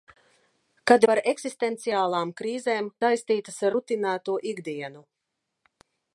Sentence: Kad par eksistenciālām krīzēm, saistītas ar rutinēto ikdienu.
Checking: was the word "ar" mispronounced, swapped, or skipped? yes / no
no